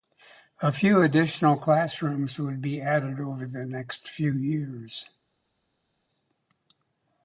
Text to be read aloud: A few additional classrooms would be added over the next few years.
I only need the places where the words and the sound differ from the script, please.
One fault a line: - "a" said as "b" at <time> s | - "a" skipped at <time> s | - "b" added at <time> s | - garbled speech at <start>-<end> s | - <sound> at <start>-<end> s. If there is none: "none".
none